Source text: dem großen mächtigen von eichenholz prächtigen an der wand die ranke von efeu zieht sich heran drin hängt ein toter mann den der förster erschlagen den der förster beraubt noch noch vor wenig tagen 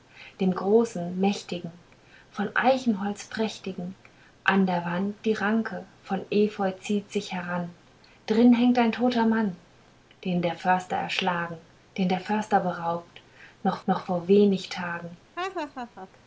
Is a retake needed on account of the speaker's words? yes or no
no